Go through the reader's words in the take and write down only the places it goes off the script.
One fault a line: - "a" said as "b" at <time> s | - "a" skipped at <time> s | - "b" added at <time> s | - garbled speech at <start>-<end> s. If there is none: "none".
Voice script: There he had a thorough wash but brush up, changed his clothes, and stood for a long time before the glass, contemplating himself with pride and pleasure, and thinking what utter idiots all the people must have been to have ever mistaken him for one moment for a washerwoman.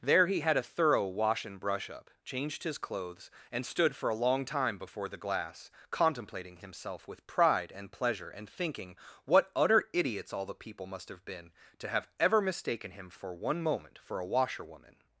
- "but" said as "and" at 1.4 s